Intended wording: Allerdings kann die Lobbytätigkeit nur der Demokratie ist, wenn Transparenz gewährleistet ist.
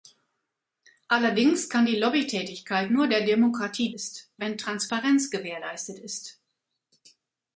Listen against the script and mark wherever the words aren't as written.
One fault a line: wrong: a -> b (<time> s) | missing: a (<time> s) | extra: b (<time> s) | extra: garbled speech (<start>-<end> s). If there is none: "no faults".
no faults